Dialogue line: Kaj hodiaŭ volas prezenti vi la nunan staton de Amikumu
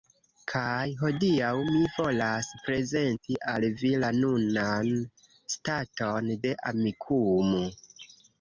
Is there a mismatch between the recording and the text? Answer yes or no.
yes